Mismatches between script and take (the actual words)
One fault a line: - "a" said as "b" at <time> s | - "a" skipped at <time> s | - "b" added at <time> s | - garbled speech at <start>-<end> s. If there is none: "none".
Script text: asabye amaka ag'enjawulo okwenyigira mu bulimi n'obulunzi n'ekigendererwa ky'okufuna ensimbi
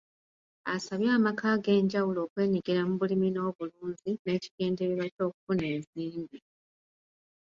none